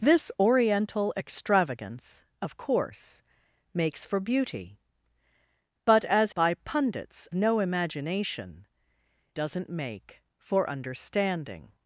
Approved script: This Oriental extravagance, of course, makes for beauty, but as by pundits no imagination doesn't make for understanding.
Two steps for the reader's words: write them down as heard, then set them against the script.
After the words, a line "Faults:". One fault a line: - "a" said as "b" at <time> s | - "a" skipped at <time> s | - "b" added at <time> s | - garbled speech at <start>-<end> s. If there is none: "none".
This Oriental extravagance, of course, makes for beauty, but as by pundits no imagination doesn't make for understanding.
Faults:
none